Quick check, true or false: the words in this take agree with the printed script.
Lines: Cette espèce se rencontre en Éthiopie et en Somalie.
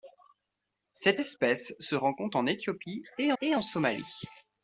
false